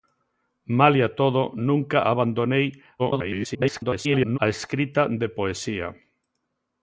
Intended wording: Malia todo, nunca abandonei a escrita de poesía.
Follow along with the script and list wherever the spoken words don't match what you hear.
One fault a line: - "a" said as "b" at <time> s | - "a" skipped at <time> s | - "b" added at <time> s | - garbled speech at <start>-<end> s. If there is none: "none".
- garbled speech at 3.0-4.4 s